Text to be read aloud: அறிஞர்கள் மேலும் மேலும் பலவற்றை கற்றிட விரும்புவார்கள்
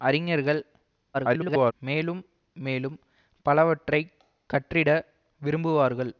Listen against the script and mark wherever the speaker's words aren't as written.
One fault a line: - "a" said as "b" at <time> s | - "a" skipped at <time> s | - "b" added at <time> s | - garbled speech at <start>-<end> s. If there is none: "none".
- garbled speech at 1.1-1.7 s